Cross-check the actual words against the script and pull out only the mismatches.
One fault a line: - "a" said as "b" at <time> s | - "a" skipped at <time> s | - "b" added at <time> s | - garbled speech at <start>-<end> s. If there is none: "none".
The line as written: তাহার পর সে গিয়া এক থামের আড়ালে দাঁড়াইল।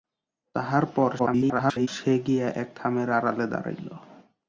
- garbled speech at 1.2-1.9 s